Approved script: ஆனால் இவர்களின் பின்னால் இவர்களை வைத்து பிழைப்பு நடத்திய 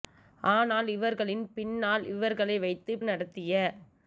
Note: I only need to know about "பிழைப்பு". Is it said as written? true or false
false